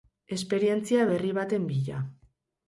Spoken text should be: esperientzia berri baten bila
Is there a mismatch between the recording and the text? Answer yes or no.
no